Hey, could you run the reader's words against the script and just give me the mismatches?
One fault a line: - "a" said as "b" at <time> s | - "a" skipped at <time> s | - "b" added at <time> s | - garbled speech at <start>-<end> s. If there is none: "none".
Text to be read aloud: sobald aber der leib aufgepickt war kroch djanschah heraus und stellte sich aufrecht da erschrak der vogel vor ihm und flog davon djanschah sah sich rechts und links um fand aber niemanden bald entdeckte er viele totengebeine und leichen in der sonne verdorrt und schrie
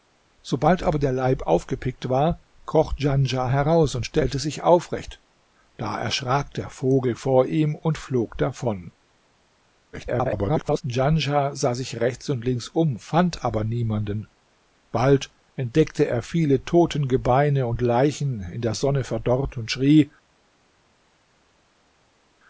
- garbled speech at 9.9-10.8 s